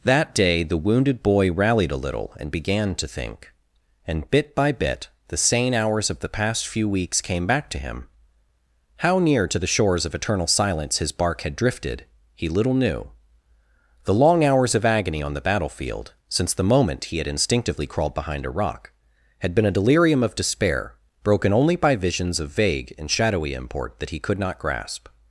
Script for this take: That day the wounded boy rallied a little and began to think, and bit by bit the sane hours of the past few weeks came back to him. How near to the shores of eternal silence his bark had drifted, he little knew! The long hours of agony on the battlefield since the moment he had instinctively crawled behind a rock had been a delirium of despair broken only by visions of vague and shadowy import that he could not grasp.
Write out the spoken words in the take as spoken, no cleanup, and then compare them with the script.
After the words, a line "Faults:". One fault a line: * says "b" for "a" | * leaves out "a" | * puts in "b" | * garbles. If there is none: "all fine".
That day the wounded boy rallied a little and began to think, and bit by bit the sane hours of the past few weeks came back to him. How near to the shores of eternal silence his bark had drifted, he little knew! The long hours of agony on the battlefield since the moment he had instinctively crawled behind a rock had been a delirium of despair broken only by visions of vague and shadowy import that he could not grasp.
Faults:
all fine